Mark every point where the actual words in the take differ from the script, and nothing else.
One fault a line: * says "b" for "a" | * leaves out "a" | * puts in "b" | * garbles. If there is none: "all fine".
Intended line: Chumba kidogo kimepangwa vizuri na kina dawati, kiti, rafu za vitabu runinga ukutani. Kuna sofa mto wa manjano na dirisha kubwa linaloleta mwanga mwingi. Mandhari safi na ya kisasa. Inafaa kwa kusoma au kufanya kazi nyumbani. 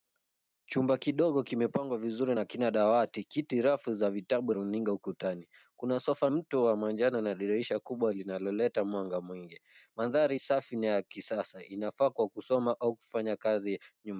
all fine